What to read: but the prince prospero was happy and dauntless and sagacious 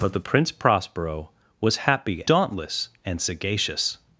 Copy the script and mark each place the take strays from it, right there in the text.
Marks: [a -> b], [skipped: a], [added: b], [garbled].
but the prince prospero was happy [skipped: and] dauntless and sagacious